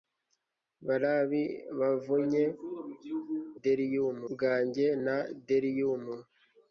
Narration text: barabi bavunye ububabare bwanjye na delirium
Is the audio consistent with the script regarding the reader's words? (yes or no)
no